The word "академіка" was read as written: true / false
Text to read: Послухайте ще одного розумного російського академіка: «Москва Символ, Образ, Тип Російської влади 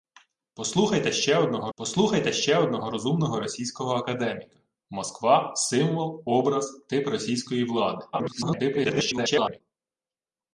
true